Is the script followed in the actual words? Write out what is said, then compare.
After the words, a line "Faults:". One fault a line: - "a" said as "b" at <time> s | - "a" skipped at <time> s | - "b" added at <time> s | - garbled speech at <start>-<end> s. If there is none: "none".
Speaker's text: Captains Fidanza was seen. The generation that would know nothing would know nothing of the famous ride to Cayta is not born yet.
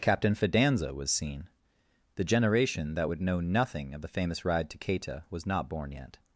Captain Fidanza was seen. The generation that would know nothing of the famous ride to Cayta was not born yet.
Faults:
- "Captains" said as "Captain" at 0.0 s
- "would know nothing" skipped at 3.9 s
- "is" said as "was" at 5.3 s